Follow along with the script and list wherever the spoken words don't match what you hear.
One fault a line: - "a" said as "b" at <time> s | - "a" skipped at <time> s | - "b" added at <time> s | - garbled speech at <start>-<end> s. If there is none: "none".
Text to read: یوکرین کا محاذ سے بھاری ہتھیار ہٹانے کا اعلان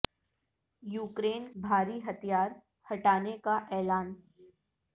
- "کا محاذ سے" skipped at 1.5 s